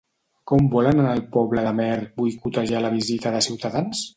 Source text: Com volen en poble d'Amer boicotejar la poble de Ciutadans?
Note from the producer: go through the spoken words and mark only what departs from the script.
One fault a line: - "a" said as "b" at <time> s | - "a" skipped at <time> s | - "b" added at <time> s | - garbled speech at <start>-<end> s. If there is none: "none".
- "el" added at 1.1 s
- "poble" said as "visita" at 3.0 s